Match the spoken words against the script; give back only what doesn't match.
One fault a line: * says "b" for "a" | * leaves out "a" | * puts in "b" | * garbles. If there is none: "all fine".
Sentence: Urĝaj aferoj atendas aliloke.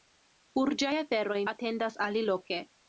all fine